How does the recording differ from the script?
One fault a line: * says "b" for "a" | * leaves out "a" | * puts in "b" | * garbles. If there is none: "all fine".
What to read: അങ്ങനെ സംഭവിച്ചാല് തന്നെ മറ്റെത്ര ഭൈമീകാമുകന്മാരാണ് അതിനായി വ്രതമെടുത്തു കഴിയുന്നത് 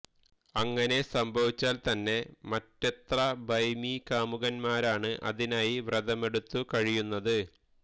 all fine